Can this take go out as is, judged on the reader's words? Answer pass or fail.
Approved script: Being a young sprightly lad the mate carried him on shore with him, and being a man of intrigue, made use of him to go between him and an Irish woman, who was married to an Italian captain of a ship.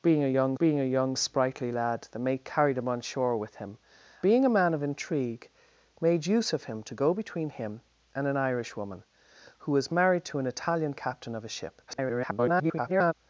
fail